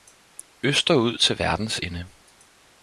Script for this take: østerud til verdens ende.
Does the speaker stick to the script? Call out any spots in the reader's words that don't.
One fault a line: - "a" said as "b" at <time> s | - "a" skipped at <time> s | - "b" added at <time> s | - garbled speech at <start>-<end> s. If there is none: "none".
none